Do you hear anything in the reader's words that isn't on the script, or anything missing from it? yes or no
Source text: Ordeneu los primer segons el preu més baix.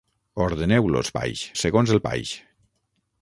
yes